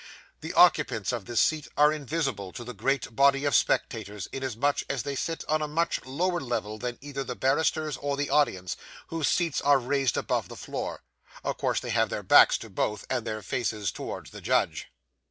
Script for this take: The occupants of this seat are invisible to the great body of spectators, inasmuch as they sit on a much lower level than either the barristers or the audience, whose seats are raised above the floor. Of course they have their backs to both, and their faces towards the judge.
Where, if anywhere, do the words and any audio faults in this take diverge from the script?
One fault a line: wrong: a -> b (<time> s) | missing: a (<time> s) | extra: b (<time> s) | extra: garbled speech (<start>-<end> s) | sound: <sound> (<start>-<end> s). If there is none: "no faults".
no faults